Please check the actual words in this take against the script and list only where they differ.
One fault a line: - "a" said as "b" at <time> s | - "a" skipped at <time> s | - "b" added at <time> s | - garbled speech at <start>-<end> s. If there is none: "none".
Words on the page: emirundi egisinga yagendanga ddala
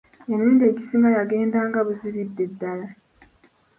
- "buzibidde" added at 1.9 s